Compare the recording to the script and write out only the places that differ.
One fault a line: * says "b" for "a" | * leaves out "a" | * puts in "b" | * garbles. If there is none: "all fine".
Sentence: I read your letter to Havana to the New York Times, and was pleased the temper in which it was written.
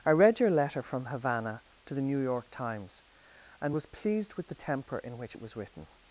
* says "from" for "to"
* puts in "with"